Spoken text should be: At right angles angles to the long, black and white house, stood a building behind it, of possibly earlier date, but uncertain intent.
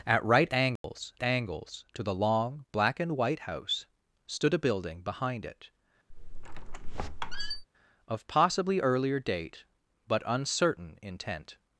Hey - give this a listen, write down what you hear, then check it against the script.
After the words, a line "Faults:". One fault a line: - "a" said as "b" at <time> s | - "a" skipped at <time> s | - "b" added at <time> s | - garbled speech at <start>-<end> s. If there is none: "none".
At right angles angles to the long, black and white house, stood a building behind it, of possibly earlier date, but uncertain intent.
Faults:
none